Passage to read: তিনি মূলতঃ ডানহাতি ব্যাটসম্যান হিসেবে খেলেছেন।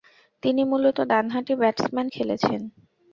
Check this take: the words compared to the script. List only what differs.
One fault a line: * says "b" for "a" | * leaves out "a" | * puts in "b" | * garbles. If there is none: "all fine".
* leaves out "হিসেবে"